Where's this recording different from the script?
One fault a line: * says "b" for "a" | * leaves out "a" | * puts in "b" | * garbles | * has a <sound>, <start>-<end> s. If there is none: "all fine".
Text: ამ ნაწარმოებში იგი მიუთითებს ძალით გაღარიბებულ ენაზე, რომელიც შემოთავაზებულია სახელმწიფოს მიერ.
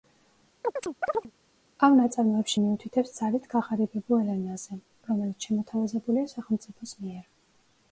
* has a chirp, 0.6-1.3 s
* leaves out "იგი"